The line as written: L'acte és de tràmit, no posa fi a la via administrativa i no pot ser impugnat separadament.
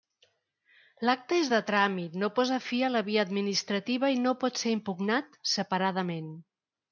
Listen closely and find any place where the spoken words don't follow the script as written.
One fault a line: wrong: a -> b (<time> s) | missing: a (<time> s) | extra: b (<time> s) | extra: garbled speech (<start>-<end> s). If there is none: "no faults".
no faults